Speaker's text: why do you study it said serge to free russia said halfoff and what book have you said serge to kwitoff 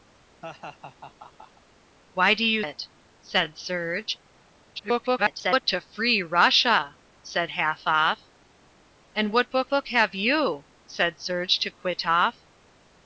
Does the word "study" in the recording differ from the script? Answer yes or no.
yes